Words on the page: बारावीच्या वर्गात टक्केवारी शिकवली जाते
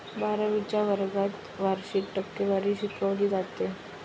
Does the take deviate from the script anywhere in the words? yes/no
yes